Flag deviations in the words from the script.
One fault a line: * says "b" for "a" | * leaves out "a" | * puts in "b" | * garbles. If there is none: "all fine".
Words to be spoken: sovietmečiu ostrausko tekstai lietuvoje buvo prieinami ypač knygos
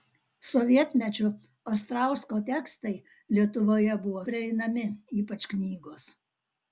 all fine